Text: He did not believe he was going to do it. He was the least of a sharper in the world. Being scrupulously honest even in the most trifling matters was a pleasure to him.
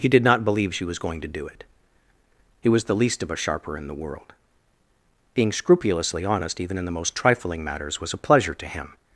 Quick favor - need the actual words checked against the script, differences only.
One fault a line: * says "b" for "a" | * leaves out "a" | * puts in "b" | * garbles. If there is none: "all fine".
* says "she" for "he"